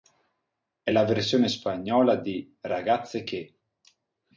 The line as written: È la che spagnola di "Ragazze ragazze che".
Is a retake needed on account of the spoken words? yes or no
yes